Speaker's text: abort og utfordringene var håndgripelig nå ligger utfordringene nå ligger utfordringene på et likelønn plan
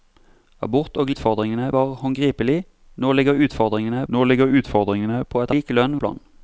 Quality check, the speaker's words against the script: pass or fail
pass